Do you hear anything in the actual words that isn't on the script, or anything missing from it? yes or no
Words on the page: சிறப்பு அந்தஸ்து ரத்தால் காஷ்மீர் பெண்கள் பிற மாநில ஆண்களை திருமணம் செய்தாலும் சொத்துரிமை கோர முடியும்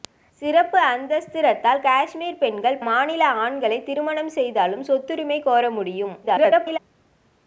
yes